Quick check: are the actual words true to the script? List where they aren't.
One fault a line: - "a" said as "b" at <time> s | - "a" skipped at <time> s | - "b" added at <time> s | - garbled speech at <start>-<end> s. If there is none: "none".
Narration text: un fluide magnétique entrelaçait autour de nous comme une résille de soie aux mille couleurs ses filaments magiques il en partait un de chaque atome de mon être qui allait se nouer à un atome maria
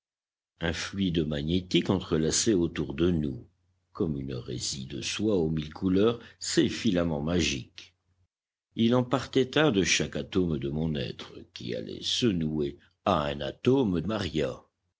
none